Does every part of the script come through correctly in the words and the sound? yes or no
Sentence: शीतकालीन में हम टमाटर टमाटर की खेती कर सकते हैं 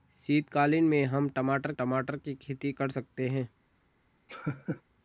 no